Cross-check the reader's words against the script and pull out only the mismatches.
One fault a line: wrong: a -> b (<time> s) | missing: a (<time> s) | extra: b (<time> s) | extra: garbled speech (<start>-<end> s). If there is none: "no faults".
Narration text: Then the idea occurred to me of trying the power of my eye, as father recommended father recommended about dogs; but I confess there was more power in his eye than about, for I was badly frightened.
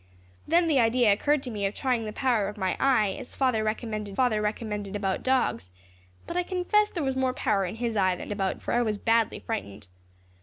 no faults